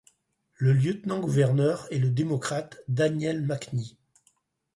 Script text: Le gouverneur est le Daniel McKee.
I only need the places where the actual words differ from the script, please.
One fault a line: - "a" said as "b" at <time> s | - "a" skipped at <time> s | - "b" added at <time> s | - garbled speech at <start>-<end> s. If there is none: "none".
- "lieutenant" added at 0.7 s
- "démocrate" added at 2.1 s